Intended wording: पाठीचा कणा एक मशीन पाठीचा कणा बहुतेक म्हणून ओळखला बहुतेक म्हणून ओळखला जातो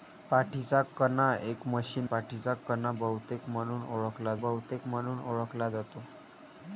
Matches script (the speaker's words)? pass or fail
pass